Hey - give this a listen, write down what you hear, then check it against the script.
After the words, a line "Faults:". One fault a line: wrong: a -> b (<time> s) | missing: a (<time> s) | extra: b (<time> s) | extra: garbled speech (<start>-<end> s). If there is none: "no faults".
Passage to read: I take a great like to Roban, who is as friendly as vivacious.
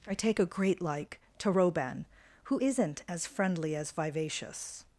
I take a great like to Roban, who isn't as friendly as vivacious.
Faults:
wrong: is -> isn't (2.6 s)